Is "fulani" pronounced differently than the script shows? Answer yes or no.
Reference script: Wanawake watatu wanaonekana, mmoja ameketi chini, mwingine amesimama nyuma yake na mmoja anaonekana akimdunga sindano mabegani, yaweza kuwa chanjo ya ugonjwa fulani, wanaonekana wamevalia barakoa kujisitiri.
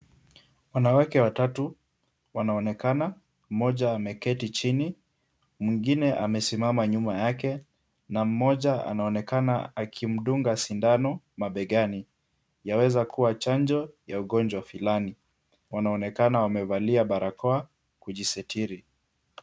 no